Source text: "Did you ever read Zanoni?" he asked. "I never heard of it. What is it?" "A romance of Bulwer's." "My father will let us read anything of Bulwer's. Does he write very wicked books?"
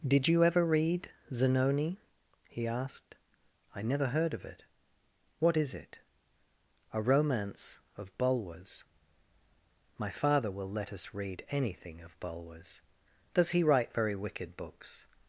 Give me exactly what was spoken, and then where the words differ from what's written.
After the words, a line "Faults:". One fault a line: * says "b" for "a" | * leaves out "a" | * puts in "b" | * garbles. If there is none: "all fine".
"Did you ever read Zanoni?" he asked. "I never heard of it. What is it?" "A romance of Bulwer's." "My father will let us read anything of Bulwer's. Does he write very wicked books?"
Faults:
all fine